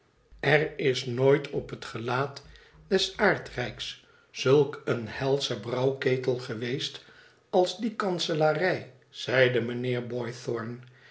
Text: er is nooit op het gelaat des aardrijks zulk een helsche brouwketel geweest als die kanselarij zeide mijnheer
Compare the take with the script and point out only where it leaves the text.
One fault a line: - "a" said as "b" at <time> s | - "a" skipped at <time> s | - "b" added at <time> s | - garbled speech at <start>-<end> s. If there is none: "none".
none